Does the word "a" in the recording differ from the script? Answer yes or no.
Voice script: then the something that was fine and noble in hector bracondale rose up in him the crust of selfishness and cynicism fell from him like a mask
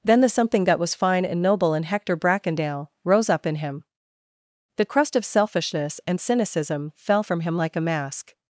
no